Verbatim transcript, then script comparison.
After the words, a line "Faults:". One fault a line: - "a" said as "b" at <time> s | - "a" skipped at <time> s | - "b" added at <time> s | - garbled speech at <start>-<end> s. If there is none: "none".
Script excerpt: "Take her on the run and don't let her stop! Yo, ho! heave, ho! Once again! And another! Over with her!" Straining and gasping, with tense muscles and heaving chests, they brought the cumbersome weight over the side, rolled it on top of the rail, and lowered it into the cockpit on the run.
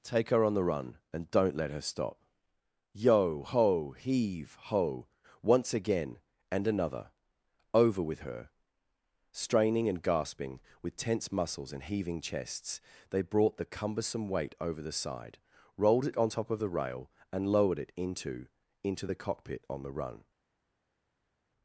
"Take her on the run and don't let her stop! Yo, ho! heave, ho! Once again! And another! Over with her!" Straining and gasping, with tense muscles and heaving chests, they brought the cumbersome weight over the side, rolled it on top of the rail, and lowered it into into the cockpit on the run.
Faults:
- "into" added at 18.8 s